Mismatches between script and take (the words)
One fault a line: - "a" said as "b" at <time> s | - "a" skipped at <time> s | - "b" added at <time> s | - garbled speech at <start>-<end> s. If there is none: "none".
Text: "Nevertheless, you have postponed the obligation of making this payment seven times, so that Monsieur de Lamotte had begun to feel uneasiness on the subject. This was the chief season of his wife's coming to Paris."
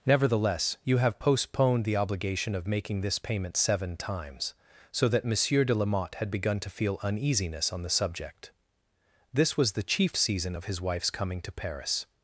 none